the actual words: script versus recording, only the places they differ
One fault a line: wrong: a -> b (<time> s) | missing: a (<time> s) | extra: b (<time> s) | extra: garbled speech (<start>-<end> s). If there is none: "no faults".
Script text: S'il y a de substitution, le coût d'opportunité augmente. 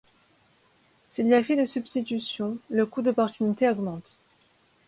extra: effet (1.4 s)